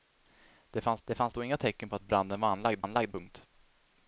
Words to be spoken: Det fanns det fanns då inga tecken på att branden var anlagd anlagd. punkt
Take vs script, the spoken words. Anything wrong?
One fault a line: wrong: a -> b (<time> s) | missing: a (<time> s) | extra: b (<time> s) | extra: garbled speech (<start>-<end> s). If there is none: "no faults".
no faults